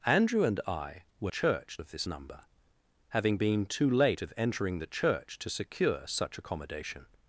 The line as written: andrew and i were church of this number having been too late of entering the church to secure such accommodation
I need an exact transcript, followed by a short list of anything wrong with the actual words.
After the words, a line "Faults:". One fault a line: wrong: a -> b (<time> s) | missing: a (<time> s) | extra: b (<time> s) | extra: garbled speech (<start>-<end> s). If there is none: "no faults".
andrew and i were church of this number having been too late of entering the church to secure such accommodation
Faults:
no faults